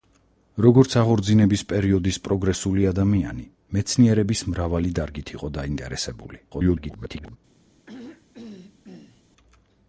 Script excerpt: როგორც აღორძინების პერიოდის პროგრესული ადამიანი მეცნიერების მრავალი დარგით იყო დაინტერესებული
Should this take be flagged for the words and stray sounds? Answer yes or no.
yes